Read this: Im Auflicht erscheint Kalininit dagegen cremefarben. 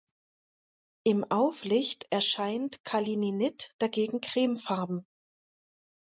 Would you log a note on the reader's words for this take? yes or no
no